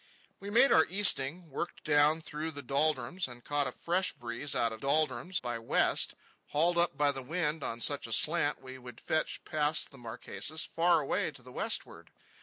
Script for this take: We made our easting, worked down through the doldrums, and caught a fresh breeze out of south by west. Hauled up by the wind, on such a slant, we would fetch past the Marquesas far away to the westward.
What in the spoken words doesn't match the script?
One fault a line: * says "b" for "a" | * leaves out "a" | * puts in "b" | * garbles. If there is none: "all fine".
* says "doldrums" for "south"